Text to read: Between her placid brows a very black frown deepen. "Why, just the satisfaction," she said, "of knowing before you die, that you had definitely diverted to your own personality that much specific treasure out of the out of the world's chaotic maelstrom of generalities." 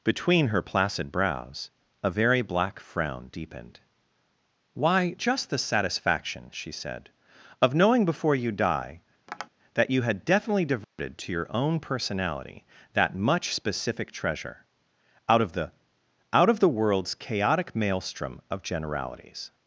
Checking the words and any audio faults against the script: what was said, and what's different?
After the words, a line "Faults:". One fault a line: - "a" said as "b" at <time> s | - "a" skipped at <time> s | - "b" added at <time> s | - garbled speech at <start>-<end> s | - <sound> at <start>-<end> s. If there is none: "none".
Between her placid brows a very black frown deepened. "Why, just the satisfaction," she said, "of knowing before you die, that you had definitely diverted to your own personality that much specific treasure out of the out of the world's chaotic maelstrom of generalities."
Faults:
- "deepen" said as "deepened" at 3.3 s
- tap at 9.3-9.5 s
- dropout at 10.8-11.0 s